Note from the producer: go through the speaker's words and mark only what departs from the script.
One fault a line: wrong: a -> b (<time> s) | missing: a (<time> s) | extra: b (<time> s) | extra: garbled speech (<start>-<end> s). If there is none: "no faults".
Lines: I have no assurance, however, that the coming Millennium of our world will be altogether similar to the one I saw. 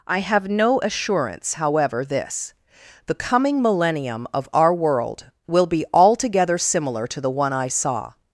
wrong: that -> this (2.0 s)